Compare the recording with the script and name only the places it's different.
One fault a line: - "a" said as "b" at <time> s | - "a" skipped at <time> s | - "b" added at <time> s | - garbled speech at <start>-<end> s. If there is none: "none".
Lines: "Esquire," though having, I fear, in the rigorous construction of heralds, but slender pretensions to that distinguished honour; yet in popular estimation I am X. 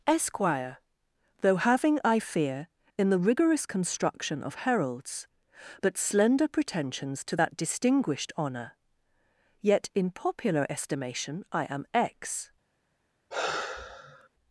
none